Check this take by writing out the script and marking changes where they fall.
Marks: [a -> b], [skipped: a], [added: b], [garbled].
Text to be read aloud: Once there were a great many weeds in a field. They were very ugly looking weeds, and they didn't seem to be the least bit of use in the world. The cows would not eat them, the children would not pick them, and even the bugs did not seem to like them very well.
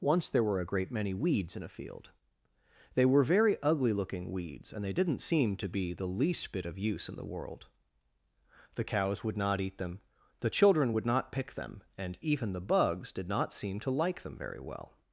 Once there were a great many weeds in a field. They were very ugly looking weeds, and they didn't seem to be the least bit of use in the world. The cows would not eat them, the children would not pick them, and even the bugs did not seem to like them very well.